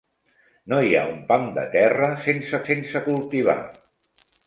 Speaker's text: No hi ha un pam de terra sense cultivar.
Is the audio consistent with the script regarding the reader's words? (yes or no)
no